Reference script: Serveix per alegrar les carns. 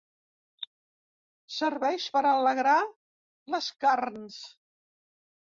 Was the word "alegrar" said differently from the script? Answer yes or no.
no